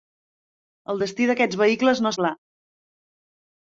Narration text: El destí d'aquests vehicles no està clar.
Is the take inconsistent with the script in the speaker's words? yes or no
yes